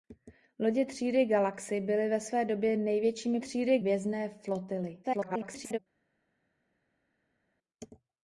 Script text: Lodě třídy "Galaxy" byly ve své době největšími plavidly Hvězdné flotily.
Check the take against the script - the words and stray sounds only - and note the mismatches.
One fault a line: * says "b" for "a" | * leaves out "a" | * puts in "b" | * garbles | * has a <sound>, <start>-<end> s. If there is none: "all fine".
* says "třídy" for "plavidly"
* garbles